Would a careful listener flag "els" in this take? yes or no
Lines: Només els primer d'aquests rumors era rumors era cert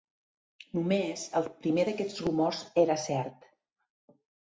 yes